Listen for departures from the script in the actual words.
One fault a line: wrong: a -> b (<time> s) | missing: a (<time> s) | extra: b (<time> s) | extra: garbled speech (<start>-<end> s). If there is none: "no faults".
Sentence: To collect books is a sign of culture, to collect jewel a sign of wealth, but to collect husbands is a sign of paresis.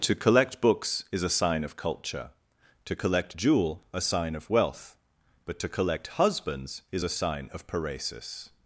no faults